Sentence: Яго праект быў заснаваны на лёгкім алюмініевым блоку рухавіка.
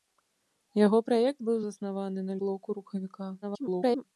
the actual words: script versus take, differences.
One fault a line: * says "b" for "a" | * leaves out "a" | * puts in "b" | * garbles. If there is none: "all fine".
* leaves out "лёгкім алюмініевым"
* garbles